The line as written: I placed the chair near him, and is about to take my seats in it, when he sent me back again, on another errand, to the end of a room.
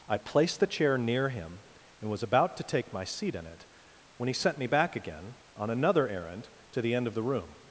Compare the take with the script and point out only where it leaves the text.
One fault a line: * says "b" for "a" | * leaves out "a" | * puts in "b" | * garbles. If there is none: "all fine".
* says "was" for "is"
* says "seat" for "seats"
* says "the" for "a"